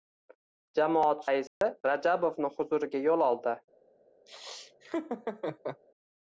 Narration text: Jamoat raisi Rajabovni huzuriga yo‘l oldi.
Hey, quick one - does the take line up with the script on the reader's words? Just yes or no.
yes